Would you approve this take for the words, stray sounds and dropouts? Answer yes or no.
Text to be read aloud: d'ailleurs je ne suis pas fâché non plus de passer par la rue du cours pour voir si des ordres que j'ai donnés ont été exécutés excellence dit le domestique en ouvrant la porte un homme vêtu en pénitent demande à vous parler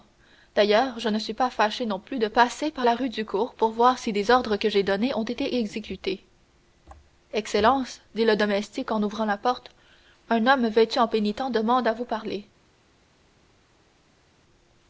yes